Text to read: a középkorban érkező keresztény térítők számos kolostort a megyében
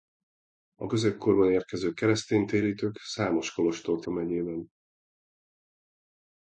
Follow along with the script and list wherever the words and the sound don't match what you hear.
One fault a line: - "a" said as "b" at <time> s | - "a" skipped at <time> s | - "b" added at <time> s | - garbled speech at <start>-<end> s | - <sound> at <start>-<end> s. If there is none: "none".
none